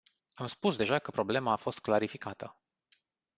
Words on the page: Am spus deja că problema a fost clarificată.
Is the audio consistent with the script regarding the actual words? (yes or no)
yes